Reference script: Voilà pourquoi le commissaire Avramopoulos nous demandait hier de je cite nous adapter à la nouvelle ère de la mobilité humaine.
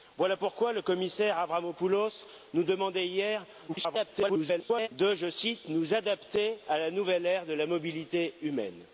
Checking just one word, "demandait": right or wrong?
right